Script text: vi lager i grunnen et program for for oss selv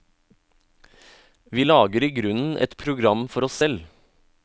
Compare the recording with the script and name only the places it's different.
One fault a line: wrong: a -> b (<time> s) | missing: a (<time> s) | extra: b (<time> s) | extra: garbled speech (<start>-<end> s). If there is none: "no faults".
missing: for (3.5 s)